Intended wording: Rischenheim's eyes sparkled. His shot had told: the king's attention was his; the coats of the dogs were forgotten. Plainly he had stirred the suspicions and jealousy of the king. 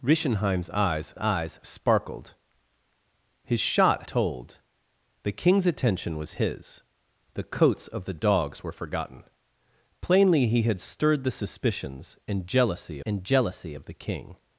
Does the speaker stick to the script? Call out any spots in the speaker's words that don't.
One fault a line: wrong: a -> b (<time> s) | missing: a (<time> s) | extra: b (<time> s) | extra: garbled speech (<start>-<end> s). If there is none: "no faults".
extra: eyes (1.2 s)
missing: had (4.0 s)
extra: and jealousy (13.1 s)